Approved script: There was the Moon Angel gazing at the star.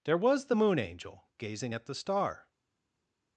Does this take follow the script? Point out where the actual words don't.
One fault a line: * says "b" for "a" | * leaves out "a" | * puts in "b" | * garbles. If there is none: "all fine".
all fine